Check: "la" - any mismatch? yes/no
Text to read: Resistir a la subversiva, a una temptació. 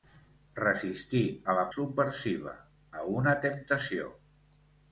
no